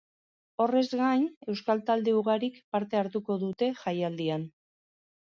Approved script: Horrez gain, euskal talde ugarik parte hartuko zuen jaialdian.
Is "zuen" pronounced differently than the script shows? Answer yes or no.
yes